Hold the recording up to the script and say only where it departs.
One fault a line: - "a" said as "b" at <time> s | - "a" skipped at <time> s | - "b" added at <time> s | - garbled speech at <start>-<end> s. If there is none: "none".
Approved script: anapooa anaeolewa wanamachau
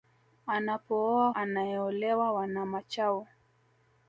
none